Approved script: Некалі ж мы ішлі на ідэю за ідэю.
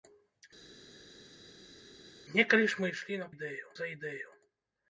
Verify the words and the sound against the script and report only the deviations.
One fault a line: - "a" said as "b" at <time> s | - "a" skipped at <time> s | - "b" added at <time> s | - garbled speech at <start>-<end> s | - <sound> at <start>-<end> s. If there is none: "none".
none